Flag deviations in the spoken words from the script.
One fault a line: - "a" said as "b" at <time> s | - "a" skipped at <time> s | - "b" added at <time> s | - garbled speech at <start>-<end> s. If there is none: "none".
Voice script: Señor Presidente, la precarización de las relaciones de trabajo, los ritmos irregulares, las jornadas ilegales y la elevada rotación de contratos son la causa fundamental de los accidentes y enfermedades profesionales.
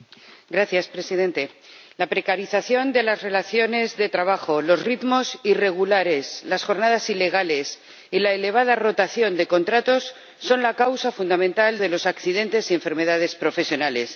none